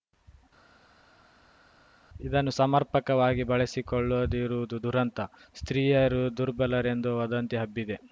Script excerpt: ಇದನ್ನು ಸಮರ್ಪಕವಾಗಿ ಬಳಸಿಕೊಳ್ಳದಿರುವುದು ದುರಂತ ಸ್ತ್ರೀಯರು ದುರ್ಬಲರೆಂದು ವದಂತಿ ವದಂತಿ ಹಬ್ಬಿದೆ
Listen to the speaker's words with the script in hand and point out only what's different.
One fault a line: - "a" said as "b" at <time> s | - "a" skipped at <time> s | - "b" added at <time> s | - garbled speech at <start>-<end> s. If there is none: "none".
- "ವದಂತಿ" skipped at 7.6 s